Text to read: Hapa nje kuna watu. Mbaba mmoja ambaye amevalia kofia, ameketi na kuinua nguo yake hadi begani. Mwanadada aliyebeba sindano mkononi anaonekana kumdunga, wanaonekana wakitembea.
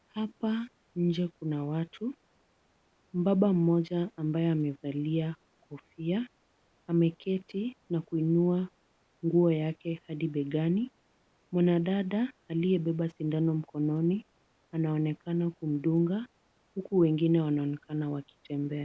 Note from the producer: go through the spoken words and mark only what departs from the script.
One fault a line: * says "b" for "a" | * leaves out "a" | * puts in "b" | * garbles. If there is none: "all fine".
* puts in "huku wengine"